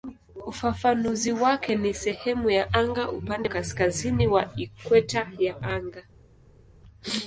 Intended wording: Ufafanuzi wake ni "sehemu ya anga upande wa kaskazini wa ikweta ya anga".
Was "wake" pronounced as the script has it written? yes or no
yes